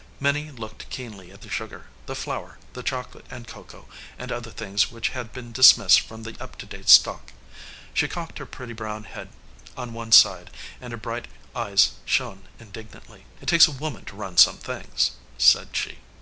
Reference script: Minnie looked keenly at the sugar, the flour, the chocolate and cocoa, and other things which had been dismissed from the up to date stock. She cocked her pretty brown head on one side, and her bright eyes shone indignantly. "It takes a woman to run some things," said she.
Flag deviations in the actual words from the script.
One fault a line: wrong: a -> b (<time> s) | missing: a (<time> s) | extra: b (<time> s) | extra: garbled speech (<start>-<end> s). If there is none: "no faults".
no faults